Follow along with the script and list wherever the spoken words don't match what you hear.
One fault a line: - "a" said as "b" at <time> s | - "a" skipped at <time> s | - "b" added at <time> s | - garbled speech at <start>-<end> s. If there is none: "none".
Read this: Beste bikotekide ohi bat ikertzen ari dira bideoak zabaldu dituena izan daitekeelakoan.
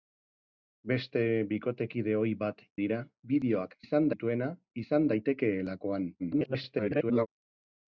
- "ikertzen ari" skipped at 2.6 s
- "zabaldu" said as "izan" at 3.9 s
- garbled speech at 6.2-7.3 s